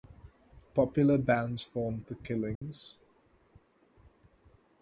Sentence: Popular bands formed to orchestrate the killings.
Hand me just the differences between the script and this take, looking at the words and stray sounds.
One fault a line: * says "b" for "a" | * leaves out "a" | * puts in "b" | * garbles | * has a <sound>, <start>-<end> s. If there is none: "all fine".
* leaves out "to orchestrate"
* has a dropout, 2.6-2.6 s